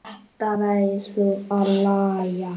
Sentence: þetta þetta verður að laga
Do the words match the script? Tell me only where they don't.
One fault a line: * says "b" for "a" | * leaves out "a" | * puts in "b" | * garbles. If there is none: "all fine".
* leaves out "þetta"